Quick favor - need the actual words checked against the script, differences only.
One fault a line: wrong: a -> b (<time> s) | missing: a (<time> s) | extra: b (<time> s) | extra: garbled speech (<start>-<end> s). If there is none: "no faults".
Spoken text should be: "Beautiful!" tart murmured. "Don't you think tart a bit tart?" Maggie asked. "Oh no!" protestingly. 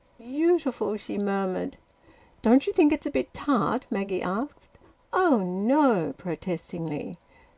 wrong: tart -> she (1.0 s)
wrong: tart -> it's (2.9 s)